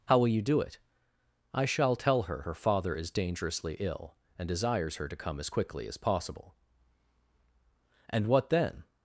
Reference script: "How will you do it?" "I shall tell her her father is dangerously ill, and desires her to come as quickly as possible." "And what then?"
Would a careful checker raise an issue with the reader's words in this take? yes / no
no